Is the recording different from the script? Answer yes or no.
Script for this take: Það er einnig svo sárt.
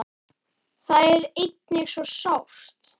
no